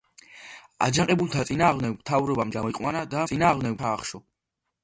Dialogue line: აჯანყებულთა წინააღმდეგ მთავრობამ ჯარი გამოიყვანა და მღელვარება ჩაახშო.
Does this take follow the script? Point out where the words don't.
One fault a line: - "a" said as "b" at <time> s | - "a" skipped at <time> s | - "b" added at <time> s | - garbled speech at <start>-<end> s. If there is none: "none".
- "ჯარი" skipped at 2.5 s
- "მღელვარება" said as "წინააღმდეგ" at 3.3 s